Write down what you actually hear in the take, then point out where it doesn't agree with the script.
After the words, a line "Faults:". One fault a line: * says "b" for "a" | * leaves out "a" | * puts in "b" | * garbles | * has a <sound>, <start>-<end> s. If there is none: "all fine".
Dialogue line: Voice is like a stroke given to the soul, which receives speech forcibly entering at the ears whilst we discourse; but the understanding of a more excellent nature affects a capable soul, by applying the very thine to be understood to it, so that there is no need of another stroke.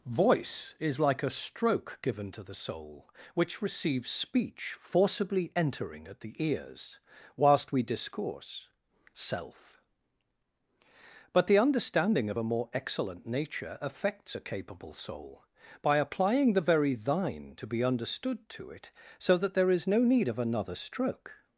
Voice is like a stroke given to the soul, which receives speech forcibly entering at the ears whilst we discourse; self but the understanding of a more excellent nature affects a capable soul, by applying the very thine to be understood to it, so that there is no need of another stroke.
Faults:
* puts in "self"